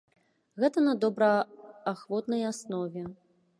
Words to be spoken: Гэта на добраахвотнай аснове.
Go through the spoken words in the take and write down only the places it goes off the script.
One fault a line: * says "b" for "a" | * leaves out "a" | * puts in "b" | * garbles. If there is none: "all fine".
all fine